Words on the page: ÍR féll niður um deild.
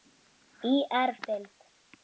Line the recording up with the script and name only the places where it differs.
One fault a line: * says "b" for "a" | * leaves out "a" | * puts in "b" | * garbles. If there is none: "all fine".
* leaves out "féll niður"